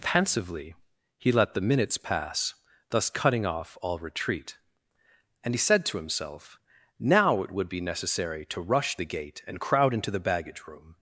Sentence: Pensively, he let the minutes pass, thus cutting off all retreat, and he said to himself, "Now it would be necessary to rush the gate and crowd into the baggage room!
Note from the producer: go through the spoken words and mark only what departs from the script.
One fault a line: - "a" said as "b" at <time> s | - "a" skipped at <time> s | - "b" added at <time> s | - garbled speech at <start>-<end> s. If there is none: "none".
none